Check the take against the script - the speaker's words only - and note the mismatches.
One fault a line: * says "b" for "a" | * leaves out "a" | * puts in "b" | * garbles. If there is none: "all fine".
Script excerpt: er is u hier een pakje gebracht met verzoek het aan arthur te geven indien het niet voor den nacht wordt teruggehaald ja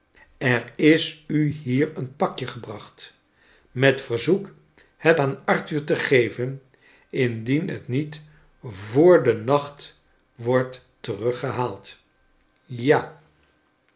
all fine